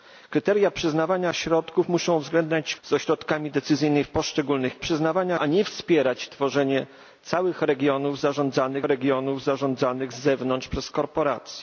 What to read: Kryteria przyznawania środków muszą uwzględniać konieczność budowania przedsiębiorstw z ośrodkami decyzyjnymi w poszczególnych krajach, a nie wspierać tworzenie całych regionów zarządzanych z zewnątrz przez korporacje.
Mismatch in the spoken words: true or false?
true